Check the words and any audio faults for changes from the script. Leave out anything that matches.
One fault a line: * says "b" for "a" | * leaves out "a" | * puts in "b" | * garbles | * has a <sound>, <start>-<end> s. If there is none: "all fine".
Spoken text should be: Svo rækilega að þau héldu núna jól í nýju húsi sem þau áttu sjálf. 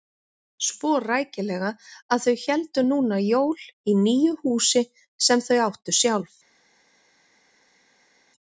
all fine